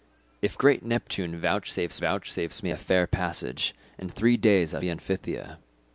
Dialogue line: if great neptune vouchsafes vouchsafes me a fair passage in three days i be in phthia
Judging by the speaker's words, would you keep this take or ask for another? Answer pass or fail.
pass